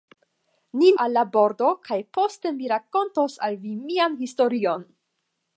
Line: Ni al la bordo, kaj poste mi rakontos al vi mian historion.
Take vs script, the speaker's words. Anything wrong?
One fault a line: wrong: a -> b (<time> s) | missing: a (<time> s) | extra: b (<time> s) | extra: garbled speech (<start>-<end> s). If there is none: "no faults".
no faults